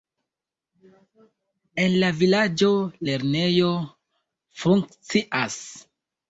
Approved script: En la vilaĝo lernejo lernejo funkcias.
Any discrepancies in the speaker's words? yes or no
yes